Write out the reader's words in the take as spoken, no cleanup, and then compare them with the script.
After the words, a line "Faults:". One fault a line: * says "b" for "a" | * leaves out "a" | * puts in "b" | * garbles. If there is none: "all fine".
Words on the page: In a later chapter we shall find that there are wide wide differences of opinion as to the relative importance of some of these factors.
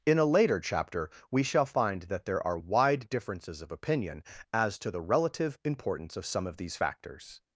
In a later chapter we shall find that there are wide differences of opinion as to the relative importance of some of these factors.
Faults:
* leaves out "wide"